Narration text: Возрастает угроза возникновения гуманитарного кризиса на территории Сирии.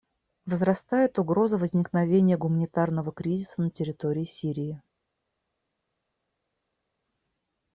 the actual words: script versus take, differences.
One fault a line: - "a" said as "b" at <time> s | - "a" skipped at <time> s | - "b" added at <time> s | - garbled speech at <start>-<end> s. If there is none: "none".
none